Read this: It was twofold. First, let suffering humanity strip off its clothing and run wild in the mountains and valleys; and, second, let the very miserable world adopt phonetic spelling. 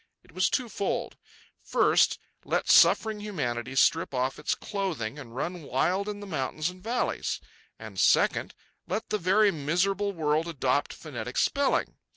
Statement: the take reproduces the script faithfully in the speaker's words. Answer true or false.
true